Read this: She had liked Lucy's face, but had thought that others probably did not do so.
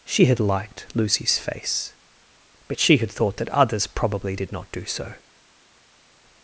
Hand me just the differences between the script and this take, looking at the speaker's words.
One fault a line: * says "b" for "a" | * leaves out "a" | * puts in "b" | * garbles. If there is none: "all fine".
* puts in "she"